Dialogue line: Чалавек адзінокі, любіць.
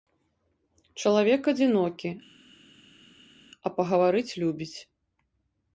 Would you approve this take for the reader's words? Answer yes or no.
no